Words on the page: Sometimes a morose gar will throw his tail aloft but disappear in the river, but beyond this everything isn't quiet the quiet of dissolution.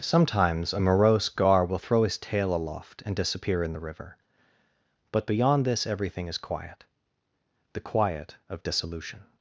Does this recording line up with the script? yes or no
no